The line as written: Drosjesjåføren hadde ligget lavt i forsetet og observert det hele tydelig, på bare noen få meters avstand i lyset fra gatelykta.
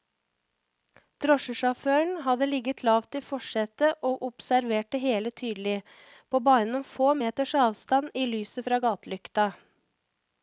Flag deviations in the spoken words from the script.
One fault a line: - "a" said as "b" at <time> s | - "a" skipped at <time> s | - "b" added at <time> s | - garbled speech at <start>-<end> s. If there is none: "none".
none